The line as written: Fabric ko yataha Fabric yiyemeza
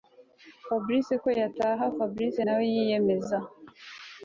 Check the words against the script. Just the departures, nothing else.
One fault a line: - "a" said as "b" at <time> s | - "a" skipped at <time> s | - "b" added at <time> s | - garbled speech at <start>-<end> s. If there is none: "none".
- "nawe" added at 2.5 s